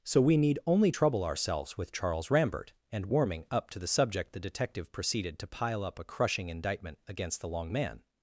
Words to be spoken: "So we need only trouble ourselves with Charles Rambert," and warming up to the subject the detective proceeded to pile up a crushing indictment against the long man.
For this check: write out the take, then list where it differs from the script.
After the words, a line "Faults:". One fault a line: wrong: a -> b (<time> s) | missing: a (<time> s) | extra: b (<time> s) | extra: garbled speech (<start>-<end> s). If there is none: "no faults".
"So we need only trouble ourselves with Charles Rambert," and warming up to the subject the detective proceeded to pile up a crushing indictment against the long man.
Faults:
no faults